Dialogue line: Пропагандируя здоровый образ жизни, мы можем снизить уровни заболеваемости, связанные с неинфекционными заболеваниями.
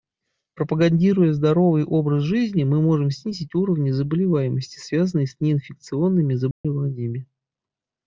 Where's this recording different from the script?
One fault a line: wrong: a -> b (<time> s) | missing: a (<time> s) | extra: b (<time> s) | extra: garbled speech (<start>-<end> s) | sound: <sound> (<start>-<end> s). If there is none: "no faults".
sound: dropout (6.5-6.6 s)